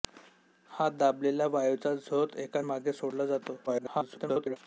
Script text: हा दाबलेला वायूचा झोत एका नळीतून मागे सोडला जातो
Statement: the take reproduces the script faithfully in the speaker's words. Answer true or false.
false